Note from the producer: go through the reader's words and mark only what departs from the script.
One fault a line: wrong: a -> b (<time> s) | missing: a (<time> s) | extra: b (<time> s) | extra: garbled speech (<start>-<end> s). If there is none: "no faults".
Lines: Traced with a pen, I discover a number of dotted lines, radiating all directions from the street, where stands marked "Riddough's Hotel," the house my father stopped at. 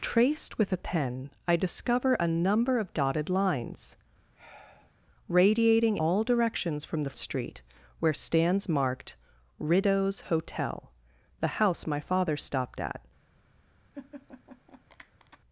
no faults